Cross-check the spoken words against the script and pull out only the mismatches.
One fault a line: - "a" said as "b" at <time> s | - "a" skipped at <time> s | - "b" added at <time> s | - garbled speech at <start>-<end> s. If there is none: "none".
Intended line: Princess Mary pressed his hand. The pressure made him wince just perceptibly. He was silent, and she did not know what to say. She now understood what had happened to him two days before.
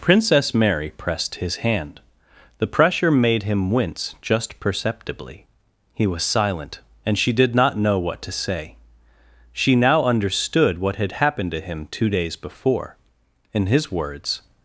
- "In his words" added at 13.5 s